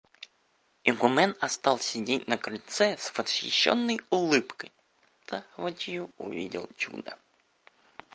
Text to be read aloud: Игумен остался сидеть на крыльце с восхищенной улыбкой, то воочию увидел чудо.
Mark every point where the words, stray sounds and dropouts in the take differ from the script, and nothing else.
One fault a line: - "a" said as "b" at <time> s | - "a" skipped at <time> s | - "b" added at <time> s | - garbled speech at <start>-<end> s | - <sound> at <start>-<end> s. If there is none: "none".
none